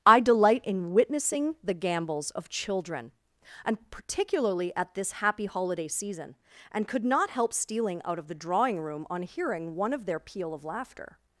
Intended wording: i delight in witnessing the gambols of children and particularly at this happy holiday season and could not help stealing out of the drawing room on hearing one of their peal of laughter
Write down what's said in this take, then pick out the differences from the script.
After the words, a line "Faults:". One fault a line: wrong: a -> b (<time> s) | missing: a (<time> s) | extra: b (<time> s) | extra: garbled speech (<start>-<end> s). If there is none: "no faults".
i delight in witnessing the gambols of children and particularly at this happy holiday season and could not help stealing out of the drawing room on hearing one of their peal of laughter
Faults:
no faults